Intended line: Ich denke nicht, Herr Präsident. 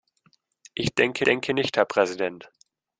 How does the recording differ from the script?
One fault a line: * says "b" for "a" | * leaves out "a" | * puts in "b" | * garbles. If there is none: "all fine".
* puts in "denke"